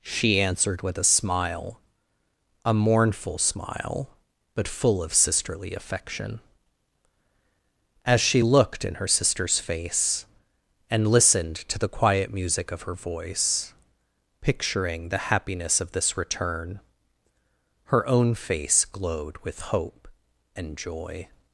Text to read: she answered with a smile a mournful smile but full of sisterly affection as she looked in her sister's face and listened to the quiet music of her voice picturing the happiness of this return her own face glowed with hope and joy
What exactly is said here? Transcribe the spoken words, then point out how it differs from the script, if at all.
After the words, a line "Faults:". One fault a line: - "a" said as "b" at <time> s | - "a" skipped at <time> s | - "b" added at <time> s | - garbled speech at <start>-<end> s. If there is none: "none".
she answered with a smile a mournful smile but full of sisterly affection as she looked in her sister's face and listened to the quiet music of her voice picturing the happiness of this return her own face glowed with hope and joy
Faults:
none